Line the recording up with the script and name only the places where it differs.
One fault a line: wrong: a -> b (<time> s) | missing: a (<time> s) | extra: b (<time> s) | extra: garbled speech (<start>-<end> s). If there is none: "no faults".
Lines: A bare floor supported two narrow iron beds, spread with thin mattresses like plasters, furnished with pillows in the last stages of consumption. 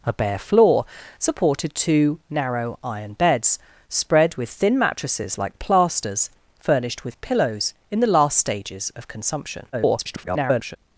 extra: garbled speech (9.7-10.8 s)